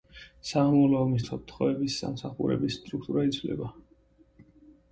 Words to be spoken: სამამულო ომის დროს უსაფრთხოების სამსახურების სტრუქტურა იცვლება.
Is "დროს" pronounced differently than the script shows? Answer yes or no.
yes